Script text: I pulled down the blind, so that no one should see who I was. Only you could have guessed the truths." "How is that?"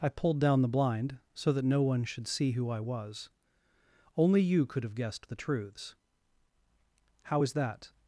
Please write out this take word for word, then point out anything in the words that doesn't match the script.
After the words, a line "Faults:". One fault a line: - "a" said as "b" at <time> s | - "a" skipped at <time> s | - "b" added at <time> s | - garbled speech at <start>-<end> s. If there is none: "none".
I pulled down the blind, so that no one should see who I was. Only you could have guessed the truths." "How is that?"
Faults:
none